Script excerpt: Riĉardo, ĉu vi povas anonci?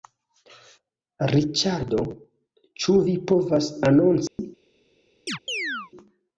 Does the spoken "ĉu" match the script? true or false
true